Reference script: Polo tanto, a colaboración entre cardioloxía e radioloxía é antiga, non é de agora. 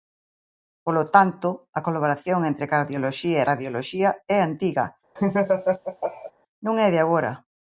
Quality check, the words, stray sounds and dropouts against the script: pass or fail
fail